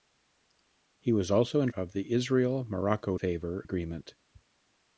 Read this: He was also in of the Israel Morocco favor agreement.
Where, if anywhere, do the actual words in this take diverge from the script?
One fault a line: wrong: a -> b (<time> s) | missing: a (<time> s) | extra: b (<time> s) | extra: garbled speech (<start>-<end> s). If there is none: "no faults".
no faults